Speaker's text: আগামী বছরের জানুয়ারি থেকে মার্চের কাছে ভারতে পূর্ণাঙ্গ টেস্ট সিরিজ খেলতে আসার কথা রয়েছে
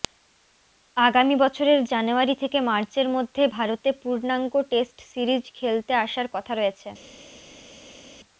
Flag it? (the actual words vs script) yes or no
yes